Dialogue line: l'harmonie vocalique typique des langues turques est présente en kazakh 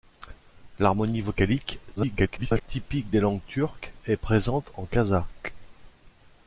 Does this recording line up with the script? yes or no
no